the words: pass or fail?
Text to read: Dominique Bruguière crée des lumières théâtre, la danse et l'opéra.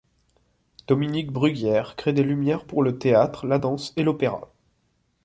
fail